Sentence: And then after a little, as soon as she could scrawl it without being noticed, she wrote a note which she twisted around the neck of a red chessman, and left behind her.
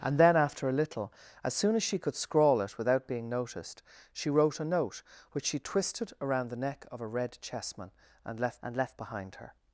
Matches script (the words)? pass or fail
fail